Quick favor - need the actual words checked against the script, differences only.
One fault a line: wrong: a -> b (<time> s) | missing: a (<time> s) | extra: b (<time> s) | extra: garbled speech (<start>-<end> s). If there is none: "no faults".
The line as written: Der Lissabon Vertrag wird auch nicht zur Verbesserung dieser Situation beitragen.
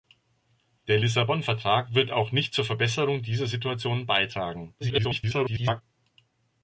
extra: garbled speech (4.8-5.8 s)